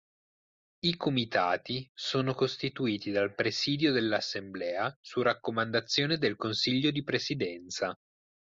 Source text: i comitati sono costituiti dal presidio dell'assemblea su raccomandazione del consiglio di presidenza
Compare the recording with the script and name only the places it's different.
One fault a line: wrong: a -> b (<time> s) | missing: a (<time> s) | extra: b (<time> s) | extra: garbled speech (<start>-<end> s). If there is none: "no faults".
no faults